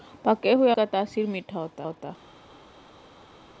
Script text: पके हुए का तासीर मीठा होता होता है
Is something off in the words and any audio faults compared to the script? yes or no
no